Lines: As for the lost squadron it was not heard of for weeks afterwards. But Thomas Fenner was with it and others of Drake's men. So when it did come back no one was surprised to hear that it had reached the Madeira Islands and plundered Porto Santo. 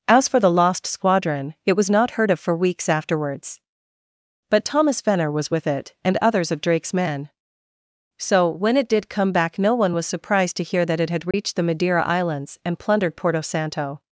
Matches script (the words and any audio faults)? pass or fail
fail